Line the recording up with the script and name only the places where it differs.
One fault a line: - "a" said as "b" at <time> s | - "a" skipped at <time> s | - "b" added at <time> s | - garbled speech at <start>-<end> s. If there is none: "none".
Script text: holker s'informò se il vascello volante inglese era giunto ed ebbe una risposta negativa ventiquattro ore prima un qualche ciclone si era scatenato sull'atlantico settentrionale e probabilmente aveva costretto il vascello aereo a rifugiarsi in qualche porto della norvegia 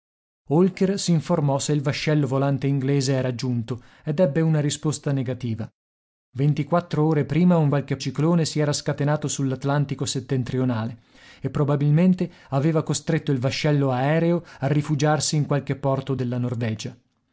none